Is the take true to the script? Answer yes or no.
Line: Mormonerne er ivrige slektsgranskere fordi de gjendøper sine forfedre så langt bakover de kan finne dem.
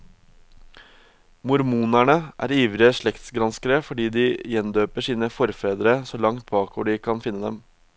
yes